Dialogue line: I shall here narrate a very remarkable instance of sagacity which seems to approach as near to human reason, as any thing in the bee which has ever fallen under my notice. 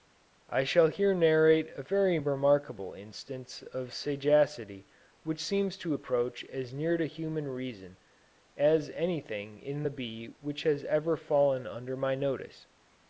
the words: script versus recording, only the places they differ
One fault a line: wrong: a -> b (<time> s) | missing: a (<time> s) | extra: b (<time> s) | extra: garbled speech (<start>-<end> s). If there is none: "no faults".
no faults